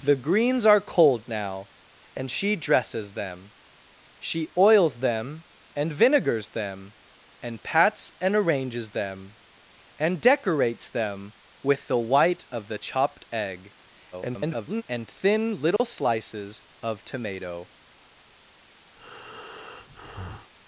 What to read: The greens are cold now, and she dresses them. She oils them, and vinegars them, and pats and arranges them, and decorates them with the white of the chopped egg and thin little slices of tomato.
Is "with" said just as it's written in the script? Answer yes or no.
yes